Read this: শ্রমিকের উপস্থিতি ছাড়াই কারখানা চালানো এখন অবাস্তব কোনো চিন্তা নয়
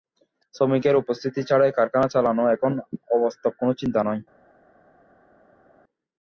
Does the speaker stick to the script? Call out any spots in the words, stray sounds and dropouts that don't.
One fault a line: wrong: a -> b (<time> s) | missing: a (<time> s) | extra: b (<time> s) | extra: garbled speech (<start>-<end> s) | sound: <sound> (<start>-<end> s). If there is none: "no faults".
no faults